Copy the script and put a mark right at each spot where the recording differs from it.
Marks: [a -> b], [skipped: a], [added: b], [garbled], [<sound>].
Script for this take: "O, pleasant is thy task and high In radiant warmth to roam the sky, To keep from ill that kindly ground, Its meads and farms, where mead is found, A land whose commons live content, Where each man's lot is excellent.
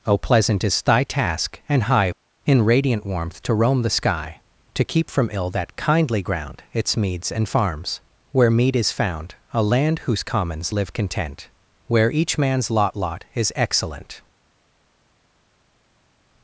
"O, pleasant is thy task and high In radiant warmth to roam the sky, To keep from ill that kindly ground, Its meads and farms, where mead is found, A land whose commons live content, Where each man's lot [added: lot] is excellent.